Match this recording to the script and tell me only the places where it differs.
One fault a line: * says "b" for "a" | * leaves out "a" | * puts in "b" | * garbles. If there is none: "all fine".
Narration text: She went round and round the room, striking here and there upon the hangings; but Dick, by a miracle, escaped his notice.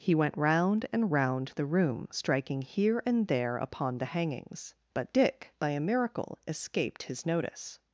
* says "He" for "She"